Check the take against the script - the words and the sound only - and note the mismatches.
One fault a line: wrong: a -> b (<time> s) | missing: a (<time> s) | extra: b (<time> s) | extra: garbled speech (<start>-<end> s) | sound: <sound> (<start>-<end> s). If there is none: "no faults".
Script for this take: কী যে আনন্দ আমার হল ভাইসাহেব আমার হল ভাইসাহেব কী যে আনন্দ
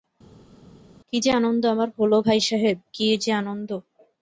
missing: আমার হল ভাইসাহেব (2.8 s)